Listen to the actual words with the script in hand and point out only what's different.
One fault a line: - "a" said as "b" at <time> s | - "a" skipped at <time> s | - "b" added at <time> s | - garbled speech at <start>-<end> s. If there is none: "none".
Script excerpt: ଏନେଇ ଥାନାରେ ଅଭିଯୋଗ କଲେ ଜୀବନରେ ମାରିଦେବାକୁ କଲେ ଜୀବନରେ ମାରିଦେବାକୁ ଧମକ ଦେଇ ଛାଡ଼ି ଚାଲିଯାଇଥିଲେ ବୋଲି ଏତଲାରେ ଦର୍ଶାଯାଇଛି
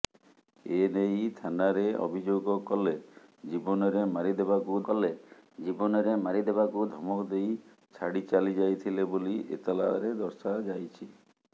none